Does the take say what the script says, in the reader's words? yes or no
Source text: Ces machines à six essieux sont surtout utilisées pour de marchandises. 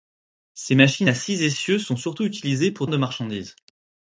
yes